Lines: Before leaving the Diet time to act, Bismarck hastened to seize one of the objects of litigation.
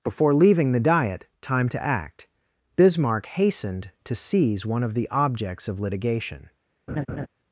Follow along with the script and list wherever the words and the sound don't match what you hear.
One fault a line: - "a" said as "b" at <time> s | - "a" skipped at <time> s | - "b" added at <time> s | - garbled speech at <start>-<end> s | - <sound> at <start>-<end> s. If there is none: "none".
- laugh at 6.9-7.3 s